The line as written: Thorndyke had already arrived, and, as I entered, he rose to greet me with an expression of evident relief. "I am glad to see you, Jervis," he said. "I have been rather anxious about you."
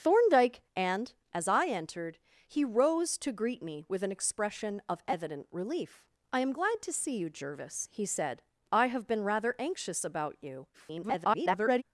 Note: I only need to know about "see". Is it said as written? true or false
true